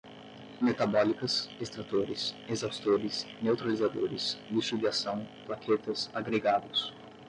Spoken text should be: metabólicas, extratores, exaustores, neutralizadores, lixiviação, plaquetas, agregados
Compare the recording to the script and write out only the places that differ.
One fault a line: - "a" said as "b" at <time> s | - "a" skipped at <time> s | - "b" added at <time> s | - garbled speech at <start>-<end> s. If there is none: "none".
none